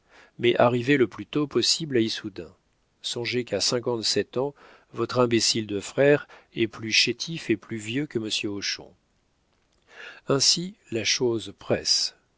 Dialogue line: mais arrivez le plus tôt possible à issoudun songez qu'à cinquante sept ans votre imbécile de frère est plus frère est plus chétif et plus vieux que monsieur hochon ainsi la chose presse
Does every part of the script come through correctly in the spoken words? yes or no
no